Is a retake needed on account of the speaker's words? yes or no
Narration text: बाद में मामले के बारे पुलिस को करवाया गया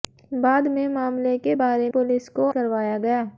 no